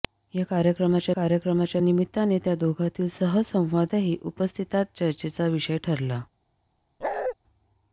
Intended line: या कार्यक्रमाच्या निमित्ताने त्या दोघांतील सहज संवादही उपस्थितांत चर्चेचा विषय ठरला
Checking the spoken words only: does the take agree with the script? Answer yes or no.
no